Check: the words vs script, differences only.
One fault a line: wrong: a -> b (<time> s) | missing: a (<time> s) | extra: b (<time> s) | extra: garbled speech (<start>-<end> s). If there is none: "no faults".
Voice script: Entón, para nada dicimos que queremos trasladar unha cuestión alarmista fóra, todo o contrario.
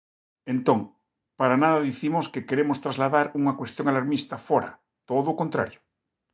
no faults